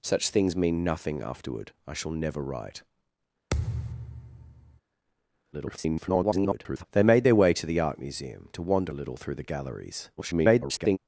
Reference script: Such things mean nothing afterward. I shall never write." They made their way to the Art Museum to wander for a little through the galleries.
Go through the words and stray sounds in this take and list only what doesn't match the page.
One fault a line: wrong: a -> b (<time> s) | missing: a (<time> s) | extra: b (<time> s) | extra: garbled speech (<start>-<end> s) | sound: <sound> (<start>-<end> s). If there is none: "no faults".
sound: thud (3.5-4.8 s)
extra: garbled speech (5.5-6.8 s)
missing: for (8.9 s)
extra: garbled speech (10.2-11.0 s)